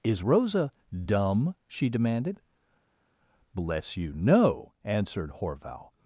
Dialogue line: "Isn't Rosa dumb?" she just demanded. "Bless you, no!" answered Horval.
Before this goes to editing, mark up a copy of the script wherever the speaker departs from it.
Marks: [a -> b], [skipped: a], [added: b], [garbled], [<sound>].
["Isn't -> Is] Rosa dumb?" she [skipped: just] demanded. "Bless you, no!" answered Horval.